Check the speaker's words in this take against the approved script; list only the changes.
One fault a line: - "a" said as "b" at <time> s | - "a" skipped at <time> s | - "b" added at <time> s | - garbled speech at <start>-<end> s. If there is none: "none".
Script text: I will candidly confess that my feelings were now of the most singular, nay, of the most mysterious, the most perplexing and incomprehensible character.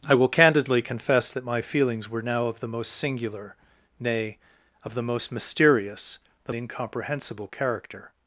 - "most perplexing and" skipped at 6.5 s